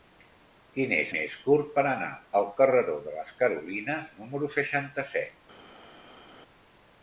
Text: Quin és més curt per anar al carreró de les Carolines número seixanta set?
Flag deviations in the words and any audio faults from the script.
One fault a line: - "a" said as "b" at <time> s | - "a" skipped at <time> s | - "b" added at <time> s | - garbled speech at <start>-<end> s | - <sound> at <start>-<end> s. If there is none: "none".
none